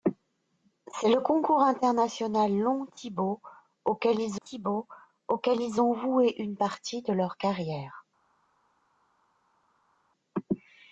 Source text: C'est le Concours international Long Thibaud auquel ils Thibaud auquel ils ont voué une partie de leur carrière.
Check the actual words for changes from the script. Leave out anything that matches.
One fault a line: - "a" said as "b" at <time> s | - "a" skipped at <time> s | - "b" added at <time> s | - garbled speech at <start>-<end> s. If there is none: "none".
none